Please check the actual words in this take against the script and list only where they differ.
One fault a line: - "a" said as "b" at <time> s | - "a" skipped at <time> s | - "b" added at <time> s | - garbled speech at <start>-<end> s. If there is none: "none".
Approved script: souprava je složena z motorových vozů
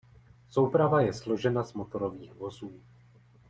none